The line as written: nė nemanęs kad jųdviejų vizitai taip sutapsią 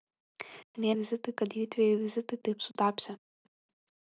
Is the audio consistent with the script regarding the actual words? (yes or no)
no